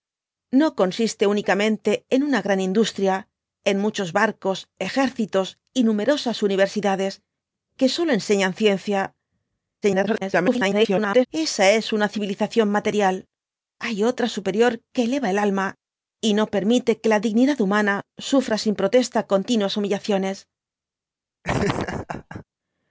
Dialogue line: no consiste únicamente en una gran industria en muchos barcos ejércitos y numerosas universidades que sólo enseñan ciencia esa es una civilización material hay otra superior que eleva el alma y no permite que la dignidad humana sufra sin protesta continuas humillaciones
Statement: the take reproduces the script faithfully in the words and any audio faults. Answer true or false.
false